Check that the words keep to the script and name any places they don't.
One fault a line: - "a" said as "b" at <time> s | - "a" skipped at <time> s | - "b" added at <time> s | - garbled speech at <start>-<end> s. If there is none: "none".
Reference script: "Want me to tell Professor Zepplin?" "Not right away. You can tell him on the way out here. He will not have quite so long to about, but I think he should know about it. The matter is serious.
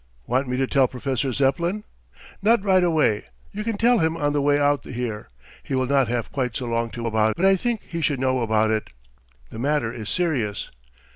none